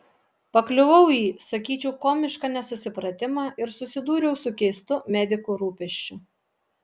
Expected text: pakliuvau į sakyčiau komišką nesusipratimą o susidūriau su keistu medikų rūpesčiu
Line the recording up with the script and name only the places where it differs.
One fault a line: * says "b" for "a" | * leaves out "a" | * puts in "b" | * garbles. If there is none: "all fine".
* says "ir" for "o"